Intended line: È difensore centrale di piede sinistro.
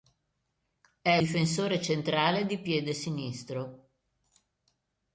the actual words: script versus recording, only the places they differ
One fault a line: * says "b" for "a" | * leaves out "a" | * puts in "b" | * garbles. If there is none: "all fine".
all fine